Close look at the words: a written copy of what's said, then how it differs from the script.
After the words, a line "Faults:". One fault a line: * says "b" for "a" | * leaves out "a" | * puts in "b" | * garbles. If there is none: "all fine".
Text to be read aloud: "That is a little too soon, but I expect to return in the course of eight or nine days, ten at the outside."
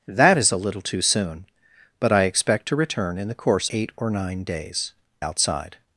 "That is a little too soon, but I expect to return in the course eight or nine days, outside."
Faults:
* leaves out "of"
* leaves out "ten at the"